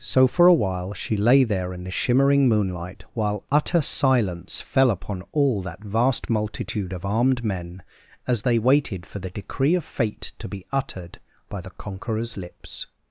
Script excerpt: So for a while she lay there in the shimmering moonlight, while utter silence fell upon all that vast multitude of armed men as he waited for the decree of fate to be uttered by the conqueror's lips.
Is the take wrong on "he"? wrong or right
wrong